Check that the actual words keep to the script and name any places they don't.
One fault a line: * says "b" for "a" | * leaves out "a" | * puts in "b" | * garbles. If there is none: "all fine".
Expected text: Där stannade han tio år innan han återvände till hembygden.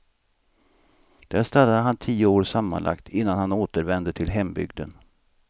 * puts in "sammanlagt"